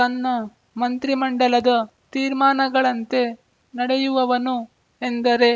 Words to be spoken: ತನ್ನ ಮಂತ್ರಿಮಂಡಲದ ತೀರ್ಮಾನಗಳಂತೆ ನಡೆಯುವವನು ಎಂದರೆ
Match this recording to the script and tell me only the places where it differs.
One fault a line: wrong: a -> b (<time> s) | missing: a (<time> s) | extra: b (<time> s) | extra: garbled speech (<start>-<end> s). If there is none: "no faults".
no faults